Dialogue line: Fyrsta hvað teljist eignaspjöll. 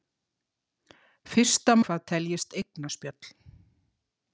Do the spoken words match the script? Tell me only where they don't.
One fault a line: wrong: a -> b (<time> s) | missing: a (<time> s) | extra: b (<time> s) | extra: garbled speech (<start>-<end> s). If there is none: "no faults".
no faults